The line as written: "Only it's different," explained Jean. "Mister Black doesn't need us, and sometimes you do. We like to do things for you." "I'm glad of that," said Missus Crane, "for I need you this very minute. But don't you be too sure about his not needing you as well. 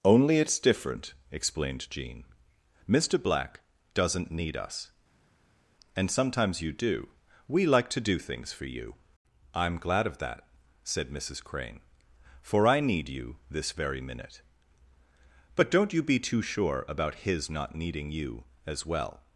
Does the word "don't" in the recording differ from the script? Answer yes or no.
no